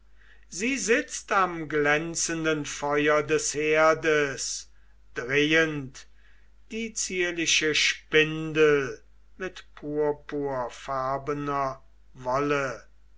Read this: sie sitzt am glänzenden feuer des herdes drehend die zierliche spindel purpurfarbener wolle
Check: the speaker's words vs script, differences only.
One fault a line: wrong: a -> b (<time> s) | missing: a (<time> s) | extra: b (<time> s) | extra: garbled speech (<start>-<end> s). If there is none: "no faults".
extra: mit (9.4 s)